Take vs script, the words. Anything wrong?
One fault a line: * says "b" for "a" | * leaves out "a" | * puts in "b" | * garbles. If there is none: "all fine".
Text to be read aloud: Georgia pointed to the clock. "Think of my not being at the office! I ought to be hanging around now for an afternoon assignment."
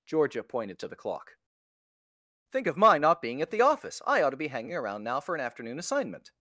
all fine